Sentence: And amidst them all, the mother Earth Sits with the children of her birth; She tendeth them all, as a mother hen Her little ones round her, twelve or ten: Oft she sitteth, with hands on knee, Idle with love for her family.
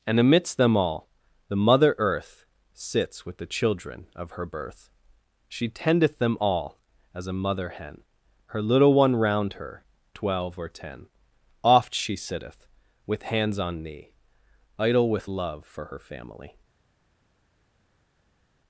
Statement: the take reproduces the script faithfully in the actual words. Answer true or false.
false